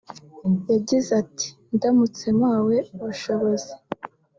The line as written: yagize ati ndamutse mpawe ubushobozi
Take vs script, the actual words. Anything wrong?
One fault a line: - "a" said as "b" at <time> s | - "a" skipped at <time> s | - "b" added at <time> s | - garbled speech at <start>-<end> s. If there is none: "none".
none